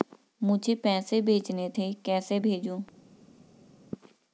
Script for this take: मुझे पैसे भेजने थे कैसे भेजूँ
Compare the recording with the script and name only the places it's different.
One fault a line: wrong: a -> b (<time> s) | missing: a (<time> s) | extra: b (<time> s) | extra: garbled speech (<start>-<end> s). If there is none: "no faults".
no faults